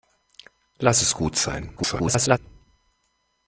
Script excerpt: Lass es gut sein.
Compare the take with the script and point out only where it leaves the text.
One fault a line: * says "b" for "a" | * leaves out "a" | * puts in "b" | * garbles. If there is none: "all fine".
* garbles